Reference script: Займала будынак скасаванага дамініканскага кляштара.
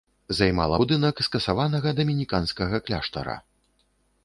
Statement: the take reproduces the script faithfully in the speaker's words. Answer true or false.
true